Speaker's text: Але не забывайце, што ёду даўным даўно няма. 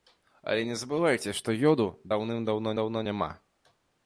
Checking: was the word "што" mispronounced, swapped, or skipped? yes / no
no